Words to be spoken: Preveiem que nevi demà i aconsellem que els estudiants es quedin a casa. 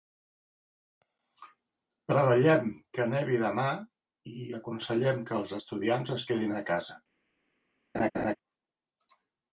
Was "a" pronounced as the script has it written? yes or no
yes